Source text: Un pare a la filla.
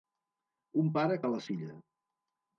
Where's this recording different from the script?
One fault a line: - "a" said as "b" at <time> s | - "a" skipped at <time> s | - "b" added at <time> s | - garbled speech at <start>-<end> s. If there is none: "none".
none